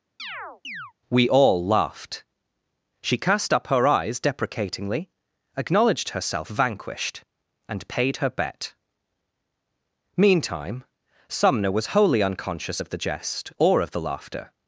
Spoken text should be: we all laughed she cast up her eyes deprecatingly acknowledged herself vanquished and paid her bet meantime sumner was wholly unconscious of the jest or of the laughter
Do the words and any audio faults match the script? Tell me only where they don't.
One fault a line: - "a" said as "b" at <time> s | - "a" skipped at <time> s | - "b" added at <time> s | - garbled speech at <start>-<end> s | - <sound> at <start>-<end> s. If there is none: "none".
- chirp at 0.2-0.9 s